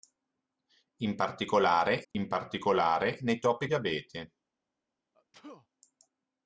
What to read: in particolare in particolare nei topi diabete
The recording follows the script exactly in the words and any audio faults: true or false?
false